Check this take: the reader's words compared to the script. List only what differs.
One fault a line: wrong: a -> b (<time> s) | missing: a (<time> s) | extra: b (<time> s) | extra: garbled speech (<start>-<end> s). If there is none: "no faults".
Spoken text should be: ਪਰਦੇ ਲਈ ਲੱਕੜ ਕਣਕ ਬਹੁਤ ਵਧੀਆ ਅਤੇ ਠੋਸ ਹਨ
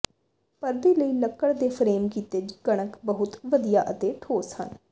extra: ਦੇ ਫਰੇਮ ਕੀਤੇ (1.5 s)